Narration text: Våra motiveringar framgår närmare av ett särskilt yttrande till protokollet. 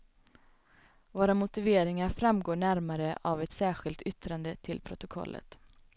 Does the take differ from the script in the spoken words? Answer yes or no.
no